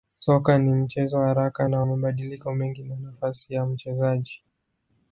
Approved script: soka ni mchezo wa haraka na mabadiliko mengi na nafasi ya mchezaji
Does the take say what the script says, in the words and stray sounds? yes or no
yes